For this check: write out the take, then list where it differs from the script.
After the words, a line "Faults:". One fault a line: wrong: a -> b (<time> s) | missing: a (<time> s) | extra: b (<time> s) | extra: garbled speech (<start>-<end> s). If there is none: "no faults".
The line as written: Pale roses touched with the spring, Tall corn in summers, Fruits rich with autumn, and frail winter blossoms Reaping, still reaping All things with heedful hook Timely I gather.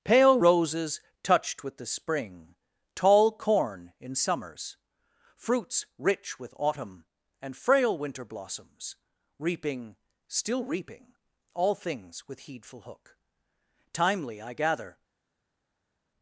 Pale roses touched with the spring, Tall corn in summers, Fruits rich with autumn, and frail winter blossoms Reaping, still reaping All things with heedful hook Timely I gather.
Faults:
no faults